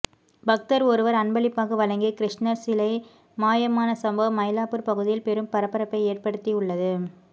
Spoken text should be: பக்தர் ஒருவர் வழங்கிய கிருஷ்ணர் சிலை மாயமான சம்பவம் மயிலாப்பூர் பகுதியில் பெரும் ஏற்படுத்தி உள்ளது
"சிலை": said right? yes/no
yes